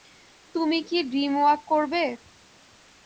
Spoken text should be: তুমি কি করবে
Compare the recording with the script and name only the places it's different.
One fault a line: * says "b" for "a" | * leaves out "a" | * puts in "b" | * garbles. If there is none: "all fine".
* puts in "ড্রিমওয়াক"